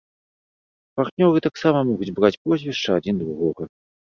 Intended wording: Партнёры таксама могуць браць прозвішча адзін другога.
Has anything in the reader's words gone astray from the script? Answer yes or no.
no